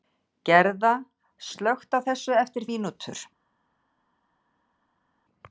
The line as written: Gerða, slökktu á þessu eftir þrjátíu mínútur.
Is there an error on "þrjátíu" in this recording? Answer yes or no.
yes